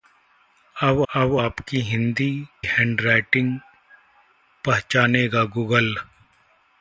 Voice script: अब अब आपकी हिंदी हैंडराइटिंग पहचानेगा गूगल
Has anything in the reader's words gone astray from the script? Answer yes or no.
no